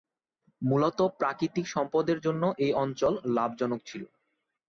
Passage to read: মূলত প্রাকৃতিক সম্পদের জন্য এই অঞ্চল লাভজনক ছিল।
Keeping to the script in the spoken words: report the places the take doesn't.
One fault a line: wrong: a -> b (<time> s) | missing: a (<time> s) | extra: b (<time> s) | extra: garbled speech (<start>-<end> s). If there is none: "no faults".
no faults